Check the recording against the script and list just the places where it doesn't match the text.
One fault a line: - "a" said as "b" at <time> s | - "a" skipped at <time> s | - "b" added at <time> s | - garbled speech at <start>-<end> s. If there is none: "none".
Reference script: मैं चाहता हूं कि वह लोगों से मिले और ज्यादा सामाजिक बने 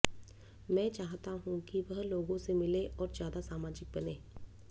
none